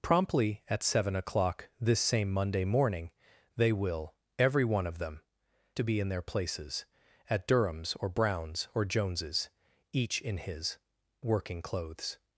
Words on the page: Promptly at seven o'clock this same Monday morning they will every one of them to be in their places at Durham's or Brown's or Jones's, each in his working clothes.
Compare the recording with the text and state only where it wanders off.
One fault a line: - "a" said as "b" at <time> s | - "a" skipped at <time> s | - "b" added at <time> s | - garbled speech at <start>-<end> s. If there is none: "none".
none